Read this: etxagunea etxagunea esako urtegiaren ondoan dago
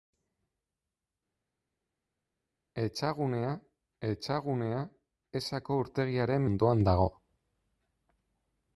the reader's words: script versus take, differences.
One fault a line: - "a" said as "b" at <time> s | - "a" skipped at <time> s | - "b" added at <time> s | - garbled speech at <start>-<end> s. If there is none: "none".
none